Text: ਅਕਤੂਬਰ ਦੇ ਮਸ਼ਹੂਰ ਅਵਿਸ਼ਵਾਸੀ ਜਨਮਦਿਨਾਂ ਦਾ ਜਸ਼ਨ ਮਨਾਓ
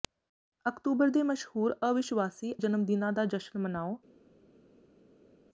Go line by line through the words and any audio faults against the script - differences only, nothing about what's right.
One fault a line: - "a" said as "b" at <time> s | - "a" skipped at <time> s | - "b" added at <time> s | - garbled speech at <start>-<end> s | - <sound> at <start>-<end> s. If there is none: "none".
none